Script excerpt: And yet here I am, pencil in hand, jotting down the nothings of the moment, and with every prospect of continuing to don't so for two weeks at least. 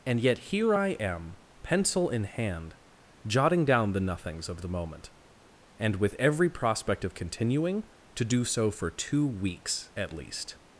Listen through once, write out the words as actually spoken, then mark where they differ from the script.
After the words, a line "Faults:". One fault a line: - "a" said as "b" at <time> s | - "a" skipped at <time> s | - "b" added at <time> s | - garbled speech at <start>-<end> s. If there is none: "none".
And yet here I am, pencil in hand, jotting down the nothings of the moment, and with every prospect of continuing to do so for two weeks at least.
Faults:
- "don't" said as "do" at 8.2 s